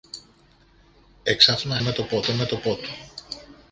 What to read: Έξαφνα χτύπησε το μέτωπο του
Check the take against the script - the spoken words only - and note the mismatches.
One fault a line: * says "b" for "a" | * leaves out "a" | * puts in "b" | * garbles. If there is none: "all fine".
* says "μέτωπο" for "χτύπησε"